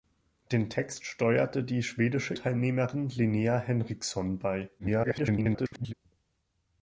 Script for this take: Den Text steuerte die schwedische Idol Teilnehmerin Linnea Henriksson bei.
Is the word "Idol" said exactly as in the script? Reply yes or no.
no